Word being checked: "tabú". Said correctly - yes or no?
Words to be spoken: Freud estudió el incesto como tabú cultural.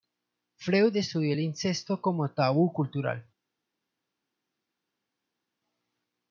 yes